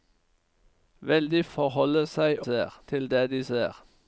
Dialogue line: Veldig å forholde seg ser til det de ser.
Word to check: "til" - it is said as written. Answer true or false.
true